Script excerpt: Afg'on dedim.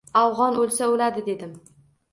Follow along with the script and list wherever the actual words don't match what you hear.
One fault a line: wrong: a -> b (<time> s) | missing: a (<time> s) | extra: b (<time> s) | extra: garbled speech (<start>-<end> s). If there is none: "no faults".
extra: o'lsa o'ladi (0.6 s)